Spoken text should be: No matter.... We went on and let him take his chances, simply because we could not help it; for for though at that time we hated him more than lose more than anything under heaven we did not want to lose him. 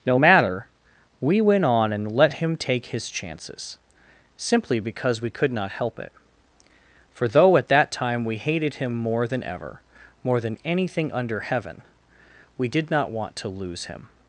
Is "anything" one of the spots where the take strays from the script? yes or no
no